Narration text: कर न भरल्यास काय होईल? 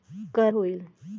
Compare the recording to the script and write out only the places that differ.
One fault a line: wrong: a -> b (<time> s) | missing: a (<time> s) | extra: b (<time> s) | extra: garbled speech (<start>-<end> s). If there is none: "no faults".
missing: न भरल्यास काय (0.5 s)